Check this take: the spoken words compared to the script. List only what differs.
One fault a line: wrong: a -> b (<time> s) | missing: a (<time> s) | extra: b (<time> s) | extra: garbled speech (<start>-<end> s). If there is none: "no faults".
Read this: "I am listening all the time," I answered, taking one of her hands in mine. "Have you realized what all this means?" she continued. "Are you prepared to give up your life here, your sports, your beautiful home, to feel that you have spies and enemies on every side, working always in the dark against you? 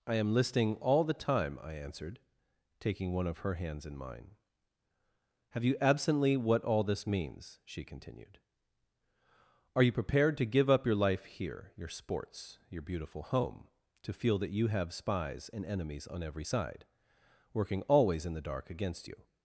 wrong: realized -> absently (5.8 s)